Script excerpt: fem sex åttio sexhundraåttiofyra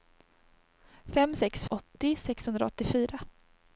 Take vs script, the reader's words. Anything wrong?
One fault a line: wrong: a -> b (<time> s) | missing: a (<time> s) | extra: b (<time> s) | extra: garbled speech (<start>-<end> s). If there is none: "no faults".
no faults